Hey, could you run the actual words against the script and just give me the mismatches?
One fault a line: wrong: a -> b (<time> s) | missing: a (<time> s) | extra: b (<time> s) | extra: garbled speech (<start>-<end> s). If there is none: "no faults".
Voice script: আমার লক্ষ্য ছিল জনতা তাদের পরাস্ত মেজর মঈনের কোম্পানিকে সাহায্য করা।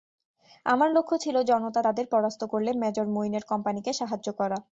extra: করলে (2.5 s)